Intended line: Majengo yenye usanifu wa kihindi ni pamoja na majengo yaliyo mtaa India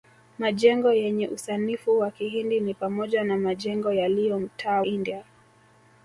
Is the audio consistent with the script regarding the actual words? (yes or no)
yes